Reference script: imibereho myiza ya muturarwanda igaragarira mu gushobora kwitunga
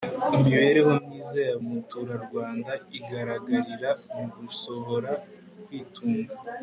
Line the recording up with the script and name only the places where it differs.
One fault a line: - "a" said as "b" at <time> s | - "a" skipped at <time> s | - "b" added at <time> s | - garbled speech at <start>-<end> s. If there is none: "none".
none